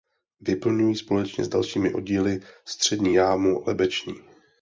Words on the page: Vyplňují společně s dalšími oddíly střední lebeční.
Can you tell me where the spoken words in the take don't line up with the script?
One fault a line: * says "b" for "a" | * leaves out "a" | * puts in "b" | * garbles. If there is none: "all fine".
* puts in "jámu"